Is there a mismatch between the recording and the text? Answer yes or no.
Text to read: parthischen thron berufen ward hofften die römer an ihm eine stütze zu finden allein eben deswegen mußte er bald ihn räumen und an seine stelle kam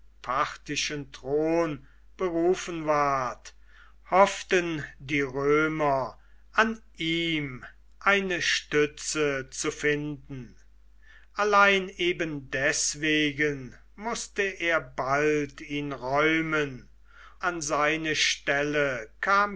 yes